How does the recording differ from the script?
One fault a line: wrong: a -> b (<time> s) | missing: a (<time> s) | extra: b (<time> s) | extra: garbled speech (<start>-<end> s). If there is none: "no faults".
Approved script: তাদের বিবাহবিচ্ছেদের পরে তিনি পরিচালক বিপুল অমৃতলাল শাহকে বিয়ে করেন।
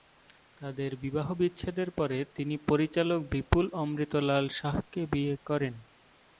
no faults